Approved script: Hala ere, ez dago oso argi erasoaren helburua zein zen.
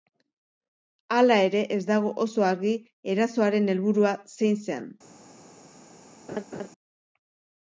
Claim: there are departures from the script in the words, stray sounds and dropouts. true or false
true